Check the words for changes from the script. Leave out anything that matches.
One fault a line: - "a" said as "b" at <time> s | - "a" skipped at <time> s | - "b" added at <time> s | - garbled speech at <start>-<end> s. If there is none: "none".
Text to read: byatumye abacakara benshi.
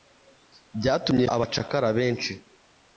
none